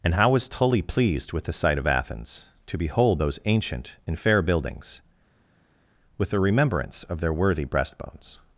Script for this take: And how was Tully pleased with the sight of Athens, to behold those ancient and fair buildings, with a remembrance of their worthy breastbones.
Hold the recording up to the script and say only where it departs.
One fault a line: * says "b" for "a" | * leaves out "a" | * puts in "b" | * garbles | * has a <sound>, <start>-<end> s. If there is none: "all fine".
all fine